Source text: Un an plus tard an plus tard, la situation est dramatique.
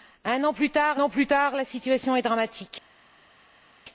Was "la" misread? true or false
false